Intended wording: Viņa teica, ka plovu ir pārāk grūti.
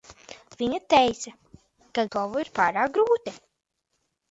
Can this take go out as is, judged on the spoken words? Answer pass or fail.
pass